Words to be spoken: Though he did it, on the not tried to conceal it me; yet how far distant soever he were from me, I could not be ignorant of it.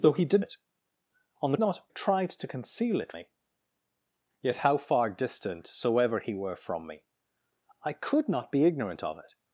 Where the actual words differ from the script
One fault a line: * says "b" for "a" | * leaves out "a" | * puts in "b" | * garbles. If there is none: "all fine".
all fine